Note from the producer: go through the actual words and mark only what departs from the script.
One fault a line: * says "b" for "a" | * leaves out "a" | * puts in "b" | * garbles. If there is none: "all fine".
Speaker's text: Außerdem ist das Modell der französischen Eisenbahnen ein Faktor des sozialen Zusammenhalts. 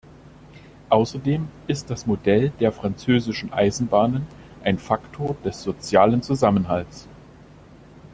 all fine